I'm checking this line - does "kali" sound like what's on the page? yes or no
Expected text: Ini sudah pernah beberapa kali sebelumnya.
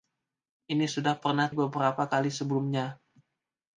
yes